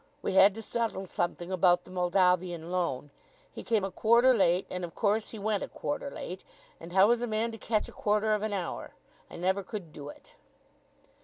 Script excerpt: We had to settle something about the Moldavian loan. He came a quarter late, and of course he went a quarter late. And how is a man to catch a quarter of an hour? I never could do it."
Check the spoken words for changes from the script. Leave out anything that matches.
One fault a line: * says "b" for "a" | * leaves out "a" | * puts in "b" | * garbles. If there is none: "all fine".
all fine